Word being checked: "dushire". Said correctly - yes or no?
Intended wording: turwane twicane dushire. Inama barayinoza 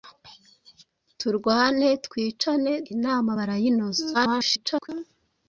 no